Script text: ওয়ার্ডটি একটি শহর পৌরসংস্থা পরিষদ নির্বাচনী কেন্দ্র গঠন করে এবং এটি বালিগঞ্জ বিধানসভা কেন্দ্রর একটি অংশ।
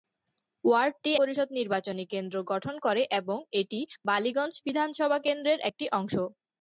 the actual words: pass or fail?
fail